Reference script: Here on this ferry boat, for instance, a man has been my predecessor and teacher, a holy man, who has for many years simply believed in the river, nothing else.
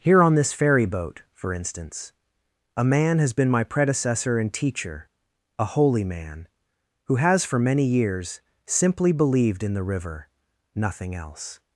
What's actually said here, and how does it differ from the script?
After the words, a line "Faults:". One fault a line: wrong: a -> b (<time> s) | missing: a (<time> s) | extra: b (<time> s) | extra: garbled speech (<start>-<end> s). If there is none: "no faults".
Here on this ferry boat, for instance, a man has been my predecessor and teacher, a holy man, who has for many years simply believed in the river, nothing else.
Faults:
no faults